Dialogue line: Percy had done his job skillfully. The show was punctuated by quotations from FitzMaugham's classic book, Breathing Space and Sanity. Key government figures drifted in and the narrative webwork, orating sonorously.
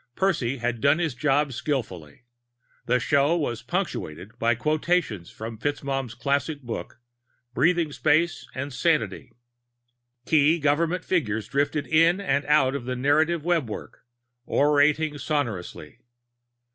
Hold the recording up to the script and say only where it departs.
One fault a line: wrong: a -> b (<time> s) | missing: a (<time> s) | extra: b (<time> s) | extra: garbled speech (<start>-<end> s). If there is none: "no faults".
extra: out of (12.5 s)